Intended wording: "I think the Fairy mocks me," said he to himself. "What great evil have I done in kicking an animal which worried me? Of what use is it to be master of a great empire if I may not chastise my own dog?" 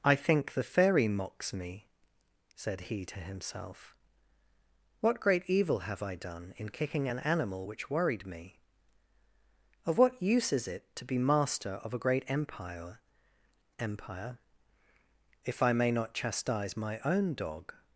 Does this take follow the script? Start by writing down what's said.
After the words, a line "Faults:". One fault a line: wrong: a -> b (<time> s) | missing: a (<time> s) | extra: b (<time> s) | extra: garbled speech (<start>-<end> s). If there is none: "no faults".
"I think the Fairy mocks me," said he to himself. "What great evil have I done in kicking an animal which worried me? Of what use is it to be master of a great empire empire if I may not chastise my own dog?"
Faults:
extra: empire (13.8 s)